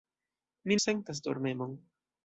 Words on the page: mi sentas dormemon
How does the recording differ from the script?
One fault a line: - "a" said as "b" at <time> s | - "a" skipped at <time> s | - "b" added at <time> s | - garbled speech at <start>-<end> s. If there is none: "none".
none